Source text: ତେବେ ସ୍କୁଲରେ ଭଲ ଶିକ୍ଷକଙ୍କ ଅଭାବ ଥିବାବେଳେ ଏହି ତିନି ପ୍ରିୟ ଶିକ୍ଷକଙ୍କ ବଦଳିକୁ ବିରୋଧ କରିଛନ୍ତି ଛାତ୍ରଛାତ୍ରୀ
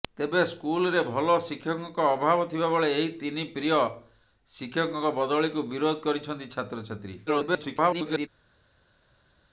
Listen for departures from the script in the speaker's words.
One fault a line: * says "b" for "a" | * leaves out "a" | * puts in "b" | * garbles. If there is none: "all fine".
* garbles